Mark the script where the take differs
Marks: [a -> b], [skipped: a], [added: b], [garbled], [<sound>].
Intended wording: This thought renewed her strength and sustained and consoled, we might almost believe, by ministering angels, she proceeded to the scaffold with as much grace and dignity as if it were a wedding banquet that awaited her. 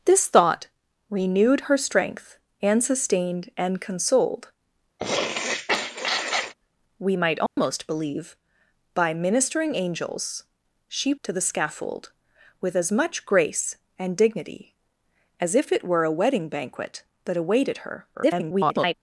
This thought renewed her strength and sustained and consoled, [sniff] we might almost [dropout] believe, by ministering angels, she [skipped: proceeded] to the scaffold with as much grace and dignity as if it were a wedding banquet that awaited her. [garbled]